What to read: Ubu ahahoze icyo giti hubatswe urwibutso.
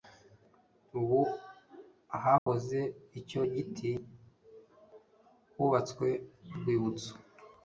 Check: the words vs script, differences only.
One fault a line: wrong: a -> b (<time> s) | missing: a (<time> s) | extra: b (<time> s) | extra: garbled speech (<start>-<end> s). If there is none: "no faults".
no faults